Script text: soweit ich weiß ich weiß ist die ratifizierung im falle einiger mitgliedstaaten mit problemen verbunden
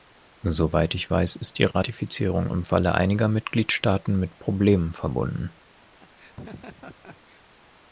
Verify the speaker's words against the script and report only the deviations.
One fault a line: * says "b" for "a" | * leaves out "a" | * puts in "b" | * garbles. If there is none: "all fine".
* leaves out "ich weiß"